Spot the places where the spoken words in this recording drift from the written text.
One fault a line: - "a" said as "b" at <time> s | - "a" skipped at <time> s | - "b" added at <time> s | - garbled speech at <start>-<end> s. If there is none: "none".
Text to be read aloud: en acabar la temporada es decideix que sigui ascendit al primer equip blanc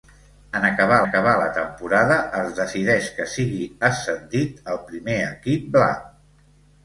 - "acabar" added at 1.0 s